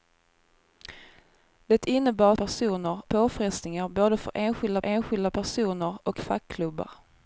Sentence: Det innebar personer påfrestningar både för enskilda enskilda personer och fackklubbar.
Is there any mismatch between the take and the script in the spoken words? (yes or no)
no